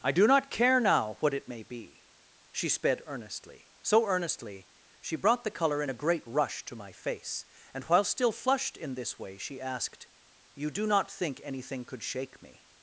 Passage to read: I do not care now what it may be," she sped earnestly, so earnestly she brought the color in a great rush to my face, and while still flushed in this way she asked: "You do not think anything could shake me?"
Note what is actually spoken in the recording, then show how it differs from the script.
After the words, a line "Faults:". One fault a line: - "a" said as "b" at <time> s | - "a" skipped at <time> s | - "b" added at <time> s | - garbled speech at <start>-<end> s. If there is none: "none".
I do not care now what it may be," she sped earnestly, so earnestly she brought the color in a great rush to my face, and while still flushed in this way she asked: "You do not think anything could shake me?"
Faults:
none